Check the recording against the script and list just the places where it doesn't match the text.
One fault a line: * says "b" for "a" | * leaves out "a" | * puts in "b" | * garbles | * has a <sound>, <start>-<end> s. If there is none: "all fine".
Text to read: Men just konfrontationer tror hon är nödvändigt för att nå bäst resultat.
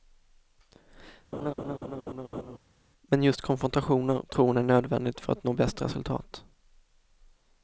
* has a laugh, 1.3-2.6 s